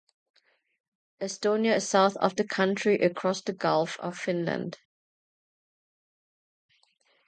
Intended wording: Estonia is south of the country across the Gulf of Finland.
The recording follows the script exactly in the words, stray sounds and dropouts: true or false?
true